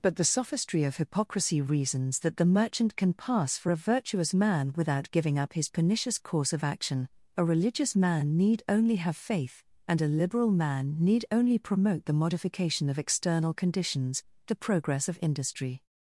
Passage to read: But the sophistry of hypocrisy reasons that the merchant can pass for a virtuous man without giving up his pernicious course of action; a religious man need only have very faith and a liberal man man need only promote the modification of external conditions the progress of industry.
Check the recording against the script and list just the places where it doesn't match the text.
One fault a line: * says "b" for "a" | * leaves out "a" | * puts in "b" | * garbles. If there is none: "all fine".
* leaves out "very"
* leaves out "man"